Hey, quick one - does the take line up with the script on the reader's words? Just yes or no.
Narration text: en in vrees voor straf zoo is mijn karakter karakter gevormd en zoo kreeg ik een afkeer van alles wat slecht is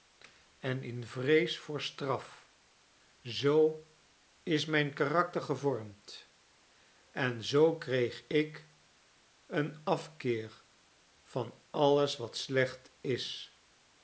no